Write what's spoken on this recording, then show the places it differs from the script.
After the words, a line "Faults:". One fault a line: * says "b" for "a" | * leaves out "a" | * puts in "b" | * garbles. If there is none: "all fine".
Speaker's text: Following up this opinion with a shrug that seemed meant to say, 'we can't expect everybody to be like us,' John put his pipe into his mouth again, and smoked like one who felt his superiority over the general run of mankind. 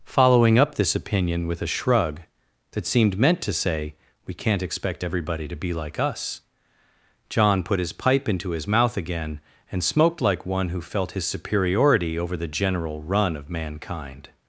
Following up this opinion with a shrug that seemed meant to say, 'we can't expect everybody to be like us,' John put his pipe into his mouth again, and smoked like one who felt his superiority over the general run of mankind.
Faults:
all fine